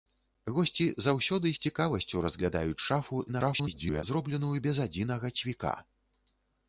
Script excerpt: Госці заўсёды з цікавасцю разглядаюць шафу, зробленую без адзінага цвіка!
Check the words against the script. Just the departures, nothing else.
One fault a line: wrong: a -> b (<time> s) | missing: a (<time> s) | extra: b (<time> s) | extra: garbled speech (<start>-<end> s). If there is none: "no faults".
extra: garbled speech (3.3-4.0 s)